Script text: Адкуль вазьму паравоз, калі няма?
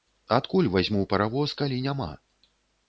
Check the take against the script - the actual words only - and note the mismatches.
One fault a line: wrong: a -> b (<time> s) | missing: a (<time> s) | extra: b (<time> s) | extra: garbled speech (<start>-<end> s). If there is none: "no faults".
no faults